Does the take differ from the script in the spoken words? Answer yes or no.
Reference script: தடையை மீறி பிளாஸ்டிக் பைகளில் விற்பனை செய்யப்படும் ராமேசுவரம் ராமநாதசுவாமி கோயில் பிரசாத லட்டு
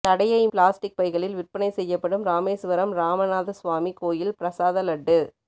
yes